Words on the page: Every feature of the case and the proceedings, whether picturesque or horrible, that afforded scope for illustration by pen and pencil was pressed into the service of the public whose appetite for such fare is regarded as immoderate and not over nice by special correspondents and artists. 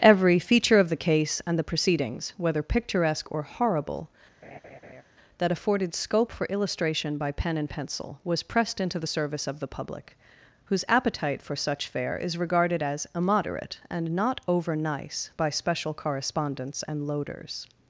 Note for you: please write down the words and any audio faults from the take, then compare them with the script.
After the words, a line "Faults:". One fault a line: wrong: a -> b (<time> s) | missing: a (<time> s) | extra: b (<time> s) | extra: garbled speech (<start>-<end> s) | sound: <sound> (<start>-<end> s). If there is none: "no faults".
Every feature of the case and the proceedings, whether picturesque or horrible, that afforded scope for illustration by pen and pencil was pressed into the service of the public whose appetite for such fare is regarded as immoderate and not over nice by special correspondents and loaders.
Faults:
sound: laugh (4.4-5.0 s)
wrong: artists -> loaders (17.0 s)